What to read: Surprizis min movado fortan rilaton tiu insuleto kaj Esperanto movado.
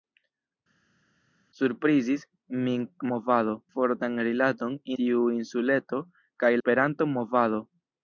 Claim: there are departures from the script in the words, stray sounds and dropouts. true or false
false